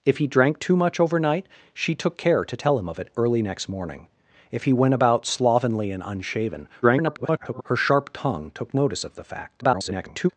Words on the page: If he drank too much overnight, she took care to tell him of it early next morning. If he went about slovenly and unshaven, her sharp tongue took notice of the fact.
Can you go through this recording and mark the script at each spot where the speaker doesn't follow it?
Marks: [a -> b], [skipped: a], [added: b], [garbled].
If he drank too much overnight, she took care to tell him of it early next morning. If he went about slovenly and unshaven, [garbled] her sharp tongue took notice of the fact. [garbled]